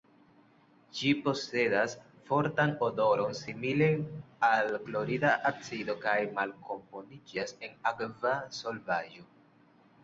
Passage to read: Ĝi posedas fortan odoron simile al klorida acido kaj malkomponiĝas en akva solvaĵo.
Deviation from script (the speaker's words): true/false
false